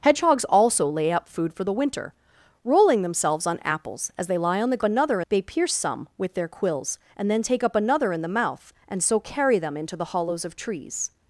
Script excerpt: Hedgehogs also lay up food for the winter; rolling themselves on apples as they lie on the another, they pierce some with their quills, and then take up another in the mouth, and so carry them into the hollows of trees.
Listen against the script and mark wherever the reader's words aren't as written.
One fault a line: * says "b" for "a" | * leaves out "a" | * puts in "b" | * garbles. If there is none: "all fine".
all fine